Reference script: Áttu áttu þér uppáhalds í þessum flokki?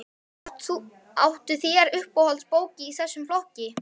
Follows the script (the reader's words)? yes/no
no